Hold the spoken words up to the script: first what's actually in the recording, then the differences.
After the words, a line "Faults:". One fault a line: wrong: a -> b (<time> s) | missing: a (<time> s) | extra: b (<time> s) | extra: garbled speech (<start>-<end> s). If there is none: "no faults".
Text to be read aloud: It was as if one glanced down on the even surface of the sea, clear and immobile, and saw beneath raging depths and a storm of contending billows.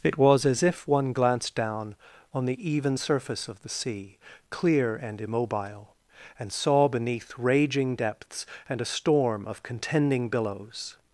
It was as if one glanced down on the even surface of the sea, clear and immobile, and saw beneath raging depths and a storm of contending billows.
Faults:
no faults